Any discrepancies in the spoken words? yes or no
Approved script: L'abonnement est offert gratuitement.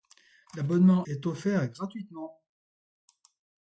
no